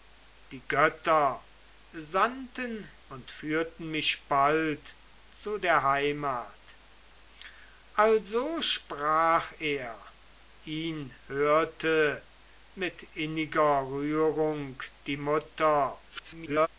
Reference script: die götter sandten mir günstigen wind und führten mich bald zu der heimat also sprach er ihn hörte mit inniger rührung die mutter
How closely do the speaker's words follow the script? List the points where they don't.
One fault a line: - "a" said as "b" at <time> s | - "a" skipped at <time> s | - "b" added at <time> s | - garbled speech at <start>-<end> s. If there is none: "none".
- "mir günstigen wind" skipped at 2.9 s
- garbled speech at 16.1-16.7 s